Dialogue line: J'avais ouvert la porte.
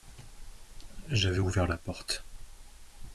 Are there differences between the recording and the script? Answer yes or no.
no